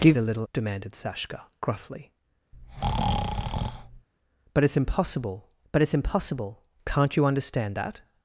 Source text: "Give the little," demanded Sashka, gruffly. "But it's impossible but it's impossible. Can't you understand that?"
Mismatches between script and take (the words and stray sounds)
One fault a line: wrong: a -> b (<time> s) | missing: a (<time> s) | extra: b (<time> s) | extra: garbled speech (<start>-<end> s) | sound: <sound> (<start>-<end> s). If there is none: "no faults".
sound: breath (2.5-4.1 s)